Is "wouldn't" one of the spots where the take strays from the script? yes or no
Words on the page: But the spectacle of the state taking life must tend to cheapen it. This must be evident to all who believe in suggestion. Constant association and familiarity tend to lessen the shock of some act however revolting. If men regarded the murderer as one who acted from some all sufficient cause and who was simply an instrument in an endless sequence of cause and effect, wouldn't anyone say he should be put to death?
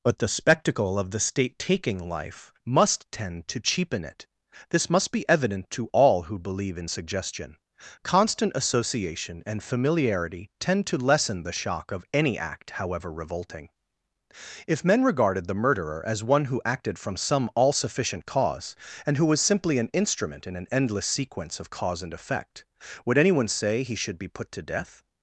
yes